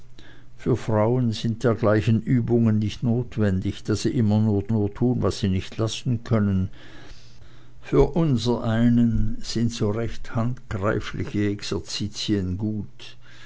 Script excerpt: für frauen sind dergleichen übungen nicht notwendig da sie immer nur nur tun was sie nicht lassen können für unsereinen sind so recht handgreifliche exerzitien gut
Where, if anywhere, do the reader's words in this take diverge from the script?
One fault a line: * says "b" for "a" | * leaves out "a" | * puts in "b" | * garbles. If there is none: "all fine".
all fine